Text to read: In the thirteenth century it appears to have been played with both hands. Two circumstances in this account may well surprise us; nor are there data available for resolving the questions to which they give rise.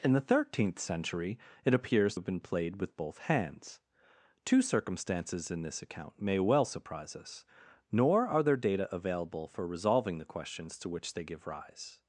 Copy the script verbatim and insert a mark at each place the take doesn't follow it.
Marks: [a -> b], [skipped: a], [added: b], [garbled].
In the thirteenth century it appears [skipped: to] have been played with both hands. Two circumstances in this account may well surprise us; nor are there data available for resolving the questions to which they give rise.